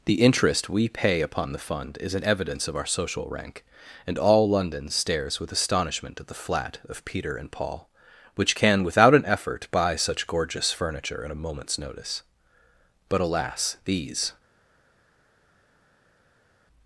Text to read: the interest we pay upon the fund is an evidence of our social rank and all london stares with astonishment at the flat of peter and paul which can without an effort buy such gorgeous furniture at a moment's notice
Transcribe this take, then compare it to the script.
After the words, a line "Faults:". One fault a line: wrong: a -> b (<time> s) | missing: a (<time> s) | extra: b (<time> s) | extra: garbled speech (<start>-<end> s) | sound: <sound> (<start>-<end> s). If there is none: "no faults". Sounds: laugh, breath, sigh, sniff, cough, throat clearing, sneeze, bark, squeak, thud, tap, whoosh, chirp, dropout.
the interest we pay upon the fund is an evidence of our social rank and all london stares with astonishment at the flat of peter and paul which can without an effort buy such gorgeous furniture at a moment's notice but alas these
Faults:
extra: but alas these (13.1 s)